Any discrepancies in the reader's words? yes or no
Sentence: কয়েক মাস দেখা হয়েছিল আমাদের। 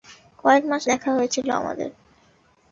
no